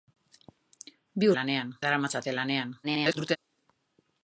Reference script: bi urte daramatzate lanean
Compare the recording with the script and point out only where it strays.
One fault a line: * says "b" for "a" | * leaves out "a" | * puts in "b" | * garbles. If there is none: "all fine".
* says "lanean" for "urte"
* garbles